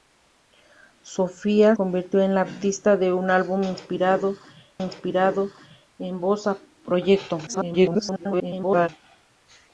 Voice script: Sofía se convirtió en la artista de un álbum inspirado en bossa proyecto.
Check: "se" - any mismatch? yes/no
yes